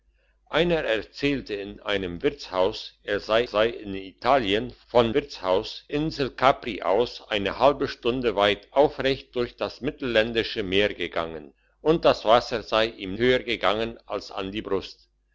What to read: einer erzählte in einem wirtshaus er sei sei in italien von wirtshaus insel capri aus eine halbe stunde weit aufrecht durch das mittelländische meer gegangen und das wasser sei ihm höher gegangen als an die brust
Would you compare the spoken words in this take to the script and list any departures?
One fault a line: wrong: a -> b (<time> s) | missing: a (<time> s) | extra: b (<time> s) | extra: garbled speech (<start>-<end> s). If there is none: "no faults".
no faults